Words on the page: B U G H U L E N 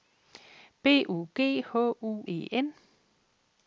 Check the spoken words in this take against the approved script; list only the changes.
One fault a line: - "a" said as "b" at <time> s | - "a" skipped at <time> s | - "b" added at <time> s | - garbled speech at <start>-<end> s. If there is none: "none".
- "L" skipped at 2.2 s